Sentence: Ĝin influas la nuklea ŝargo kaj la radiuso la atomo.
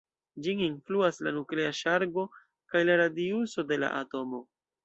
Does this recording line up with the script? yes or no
no